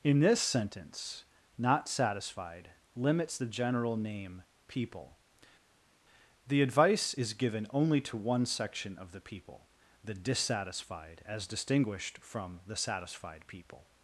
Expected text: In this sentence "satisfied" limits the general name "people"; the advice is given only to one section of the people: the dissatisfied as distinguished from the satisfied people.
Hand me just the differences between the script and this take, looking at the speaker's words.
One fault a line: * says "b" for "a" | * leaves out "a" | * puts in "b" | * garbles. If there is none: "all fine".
* puts in "not"